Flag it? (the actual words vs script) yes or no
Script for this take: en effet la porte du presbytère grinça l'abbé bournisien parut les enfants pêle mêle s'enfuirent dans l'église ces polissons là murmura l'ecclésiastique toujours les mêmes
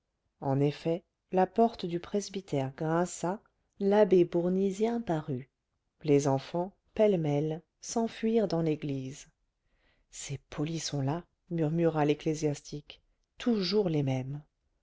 no